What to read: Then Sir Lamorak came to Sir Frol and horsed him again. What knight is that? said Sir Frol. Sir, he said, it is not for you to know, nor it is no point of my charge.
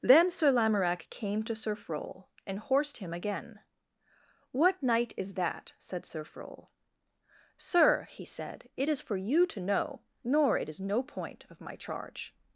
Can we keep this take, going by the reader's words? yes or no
no